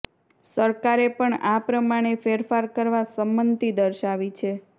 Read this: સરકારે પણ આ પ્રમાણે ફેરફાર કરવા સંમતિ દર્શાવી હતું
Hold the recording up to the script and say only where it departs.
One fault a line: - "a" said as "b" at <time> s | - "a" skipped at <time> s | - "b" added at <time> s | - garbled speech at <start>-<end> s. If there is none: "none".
- "હતું" said as "છે" at 4.4 s